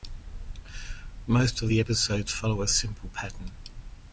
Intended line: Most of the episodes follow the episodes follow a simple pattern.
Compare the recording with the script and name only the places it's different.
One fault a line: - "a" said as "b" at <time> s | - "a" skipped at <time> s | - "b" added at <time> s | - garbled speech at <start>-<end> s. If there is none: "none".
- "the episodes follow" skipped at 2.6 s